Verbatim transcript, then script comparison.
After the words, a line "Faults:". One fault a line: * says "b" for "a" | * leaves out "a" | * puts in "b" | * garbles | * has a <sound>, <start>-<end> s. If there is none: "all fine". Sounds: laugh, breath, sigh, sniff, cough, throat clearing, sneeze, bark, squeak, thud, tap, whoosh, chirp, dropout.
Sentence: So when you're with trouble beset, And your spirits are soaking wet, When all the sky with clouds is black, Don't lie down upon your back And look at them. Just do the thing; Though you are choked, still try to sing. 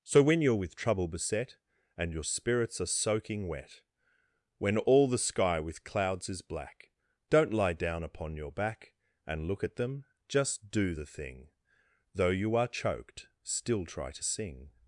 So when you're with trouble beset, And your spirits are soaking wet, When all the sky with clouds is black, Don't lie down upon your back And look at them. Just do the thing; Though you are choked, still try to sing.
Faults:
all fine